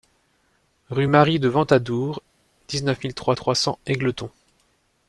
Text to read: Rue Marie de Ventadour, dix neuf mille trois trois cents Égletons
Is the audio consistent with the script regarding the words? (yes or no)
yes